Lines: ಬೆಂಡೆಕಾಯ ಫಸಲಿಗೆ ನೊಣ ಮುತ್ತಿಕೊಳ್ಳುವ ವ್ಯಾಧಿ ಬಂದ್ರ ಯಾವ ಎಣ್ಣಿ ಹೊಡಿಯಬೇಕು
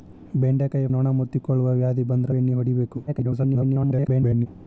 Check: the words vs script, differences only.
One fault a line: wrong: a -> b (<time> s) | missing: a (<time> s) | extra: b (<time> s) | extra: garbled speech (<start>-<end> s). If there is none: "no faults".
missing: ಫಸಲಿಗೆ (0.9 s)
missing: ಯಾವ (2.3 s)
extra: garbled speech (3.1-4.5 s)